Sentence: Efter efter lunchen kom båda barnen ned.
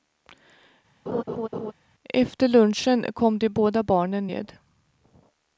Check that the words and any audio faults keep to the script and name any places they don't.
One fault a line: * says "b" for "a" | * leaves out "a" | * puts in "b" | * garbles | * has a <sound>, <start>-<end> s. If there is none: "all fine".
* has a laugh, 1.1-1.7 s
* leaves out "efter"
* puts in "de"